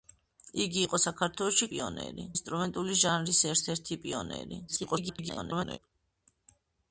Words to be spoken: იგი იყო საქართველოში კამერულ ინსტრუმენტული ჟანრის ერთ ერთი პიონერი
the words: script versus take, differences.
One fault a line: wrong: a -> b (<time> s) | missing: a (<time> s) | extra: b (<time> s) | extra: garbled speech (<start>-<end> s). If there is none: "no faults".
wrong: კამერულ -> პიონერი (1.7 s)
extra: garbled speech (4.7-5.8 s)